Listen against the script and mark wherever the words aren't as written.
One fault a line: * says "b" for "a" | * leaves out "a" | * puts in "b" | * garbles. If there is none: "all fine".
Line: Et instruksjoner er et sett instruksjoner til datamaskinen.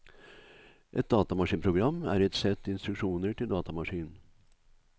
* says "datamaskinprogram" for "instruksjoner"